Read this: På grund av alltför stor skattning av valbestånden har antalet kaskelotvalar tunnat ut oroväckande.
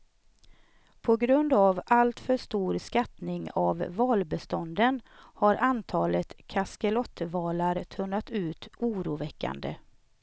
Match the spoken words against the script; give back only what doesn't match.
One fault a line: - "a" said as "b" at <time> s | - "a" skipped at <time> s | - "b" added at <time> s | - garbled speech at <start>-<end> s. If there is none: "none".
none